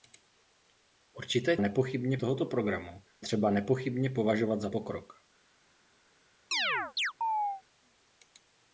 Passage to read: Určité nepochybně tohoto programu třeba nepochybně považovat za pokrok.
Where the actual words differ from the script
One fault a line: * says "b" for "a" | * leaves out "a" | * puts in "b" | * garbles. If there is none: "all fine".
all fine